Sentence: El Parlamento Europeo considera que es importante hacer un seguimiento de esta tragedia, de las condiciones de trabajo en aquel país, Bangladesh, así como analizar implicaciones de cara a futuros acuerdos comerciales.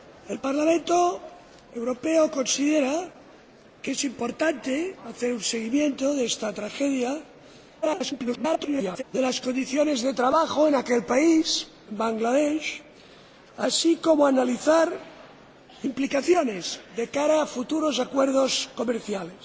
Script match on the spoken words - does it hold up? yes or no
no